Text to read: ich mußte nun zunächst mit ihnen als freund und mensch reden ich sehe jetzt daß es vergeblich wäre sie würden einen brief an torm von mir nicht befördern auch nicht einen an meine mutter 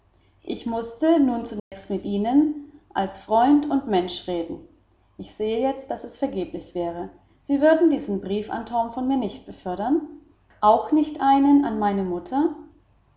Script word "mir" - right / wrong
right